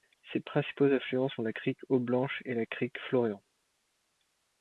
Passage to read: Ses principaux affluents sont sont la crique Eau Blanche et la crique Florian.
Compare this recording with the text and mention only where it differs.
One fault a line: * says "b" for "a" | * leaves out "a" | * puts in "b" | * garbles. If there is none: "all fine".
* leaves out "sont"